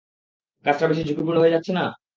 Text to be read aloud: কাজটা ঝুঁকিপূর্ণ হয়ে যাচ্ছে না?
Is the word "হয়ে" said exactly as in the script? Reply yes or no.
yes